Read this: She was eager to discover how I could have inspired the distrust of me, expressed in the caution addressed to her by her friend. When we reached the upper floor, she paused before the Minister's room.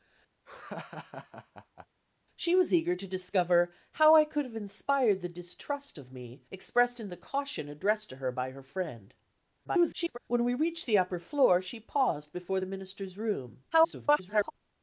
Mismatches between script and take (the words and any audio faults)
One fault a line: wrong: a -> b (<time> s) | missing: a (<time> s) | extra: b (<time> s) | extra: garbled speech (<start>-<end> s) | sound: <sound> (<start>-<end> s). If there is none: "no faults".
sound: laugh (0.5-1.9 s)
extra: garbled speech (9.7-10.2 s)
extra: garbled speech (13.7-14.5 s)